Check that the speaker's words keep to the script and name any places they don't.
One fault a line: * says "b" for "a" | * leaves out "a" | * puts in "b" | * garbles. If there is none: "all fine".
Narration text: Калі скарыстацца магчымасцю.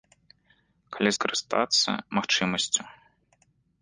all fine